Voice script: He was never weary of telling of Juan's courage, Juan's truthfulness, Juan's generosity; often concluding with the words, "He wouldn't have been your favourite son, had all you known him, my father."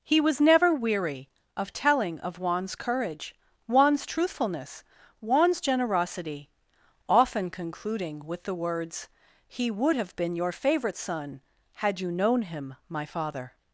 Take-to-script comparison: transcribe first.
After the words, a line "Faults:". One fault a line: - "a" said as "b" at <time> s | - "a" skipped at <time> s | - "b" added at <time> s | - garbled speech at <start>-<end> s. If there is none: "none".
He was never weary of telling of Juan's courage, Juan's truthfulness, Juan's generosity; often concluding with the words, "He would have been your favourite son, had you known him, my father."
Faults:
- "wouldn't" said as "would" at 9.7 s
- "all" skipped at 12.0 s